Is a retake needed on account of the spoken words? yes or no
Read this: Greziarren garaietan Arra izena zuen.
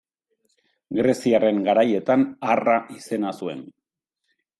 no